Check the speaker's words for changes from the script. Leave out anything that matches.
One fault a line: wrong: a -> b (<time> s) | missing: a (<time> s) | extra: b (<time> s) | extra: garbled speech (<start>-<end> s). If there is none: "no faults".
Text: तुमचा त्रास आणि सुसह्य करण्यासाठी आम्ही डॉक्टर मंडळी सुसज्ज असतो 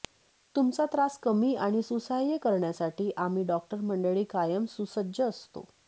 extra: कमी (1.2 s)
extra: कायम (4.2 s)